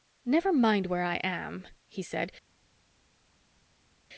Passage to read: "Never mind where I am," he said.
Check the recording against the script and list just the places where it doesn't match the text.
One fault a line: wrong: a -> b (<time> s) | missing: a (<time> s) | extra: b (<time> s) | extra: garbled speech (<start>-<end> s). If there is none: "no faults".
no faults